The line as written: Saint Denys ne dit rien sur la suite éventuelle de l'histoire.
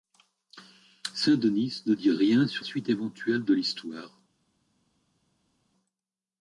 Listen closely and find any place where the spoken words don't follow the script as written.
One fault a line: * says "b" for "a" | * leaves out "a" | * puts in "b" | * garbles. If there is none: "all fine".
* leaves out "la"